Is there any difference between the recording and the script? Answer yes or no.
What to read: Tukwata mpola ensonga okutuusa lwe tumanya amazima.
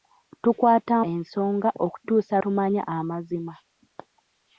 yes